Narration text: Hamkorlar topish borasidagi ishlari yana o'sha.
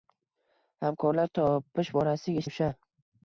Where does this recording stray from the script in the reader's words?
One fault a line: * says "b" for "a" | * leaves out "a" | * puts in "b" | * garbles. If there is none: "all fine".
* leaves out "ishlari yana"